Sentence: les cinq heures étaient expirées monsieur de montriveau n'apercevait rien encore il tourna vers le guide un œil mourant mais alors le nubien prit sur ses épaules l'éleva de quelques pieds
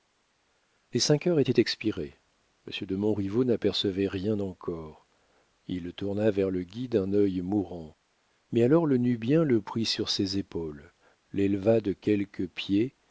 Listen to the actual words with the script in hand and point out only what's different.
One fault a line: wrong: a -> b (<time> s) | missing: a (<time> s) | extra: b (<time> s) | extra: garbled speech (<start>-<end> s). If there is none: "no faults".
extra: le (9.4 s)